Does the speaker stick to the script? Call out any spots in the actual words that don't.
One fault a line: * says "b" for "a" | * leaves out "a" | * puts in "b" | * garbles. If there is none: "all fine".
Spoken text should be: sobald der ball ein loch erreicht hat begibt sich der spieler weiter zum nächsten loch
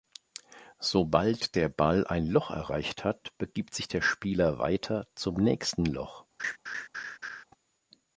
all fine